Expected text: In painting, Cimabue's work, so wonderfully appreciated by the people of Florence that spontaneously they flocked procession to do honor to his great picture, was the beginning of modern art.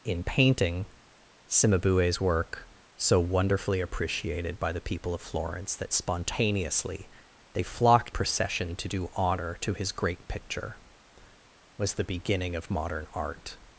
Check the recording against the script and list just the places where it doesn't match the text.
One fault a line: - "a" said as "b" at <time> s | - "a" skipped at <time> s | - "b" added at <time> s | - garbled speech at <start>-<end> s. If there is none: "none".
none